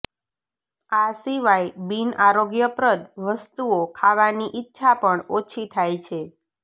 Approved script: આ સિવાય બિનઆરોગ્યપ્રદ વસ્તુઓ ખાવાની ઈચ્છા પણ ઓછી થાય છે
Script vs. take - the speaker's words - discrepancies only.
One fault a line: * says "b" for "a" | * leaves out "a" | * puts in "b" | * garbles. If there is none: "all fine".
all fine